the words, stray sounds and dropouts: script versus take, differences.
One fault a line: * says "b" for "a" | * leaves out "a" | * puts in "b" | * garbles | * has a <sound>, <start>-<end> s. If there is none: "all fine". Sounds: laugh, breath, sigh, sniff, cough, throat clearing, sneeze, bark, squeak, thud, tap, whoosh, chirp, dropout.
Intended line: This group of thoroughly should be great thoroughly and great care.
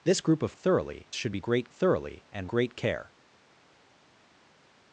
all fine